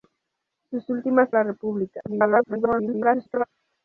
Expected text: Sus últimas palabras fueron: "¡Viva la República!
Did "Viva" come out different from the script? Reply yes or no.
yes